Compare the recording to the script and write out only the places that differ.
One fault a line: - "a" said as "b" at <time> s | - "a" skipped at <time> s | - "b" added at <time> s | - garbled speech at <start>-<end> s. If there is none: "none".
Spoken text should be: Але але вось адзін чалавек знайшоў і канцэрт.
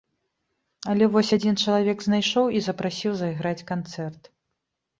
- "але" skipped at 1.1 s
- "запрасіў зайграць" added at 2.7 s